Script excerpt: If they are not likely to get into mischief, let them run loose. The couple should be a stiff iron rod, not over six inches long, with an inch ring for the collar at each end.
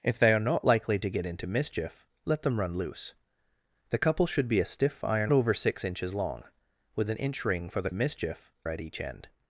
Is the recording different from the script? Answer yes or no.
yes